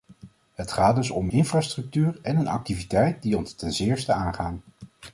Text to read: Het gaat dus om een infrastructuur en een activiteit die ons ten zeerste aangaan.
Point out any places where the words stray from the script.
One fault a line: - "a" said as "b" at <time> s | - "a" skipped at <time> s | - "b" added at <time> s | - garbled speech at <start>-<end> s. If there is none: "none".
- "een" skipped at 1.3 s